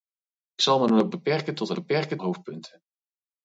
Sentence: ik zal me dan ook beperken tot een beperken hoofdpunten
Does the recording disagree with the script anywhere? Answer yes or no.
no